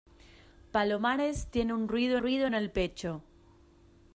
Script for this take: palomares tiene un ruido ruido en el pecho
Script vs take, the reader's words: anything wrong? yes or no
no